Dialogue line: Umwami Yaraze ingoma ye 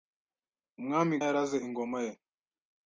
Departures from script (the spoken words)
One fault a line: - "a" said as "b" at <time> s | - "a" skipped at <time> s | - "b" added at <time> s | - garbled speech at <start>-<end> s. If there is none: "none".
none